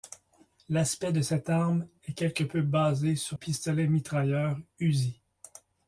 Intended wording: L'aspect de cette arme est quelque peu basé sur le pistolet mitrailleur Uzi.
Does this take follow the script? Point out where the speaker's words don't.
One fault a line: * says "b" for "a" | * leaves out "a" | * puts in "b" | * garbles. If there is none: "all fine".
* leaves out "le"